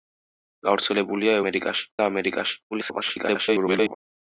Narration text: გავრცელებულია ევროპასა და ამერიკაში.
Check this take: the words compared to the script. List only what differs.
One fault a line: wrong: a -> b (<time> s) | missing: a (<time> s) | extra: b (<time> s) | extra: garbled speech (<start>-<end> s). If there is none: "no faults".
wrong: ევროპასა -> ამერიკაში (1.4 s)
extra: garbled speech (2.7-4.0 s)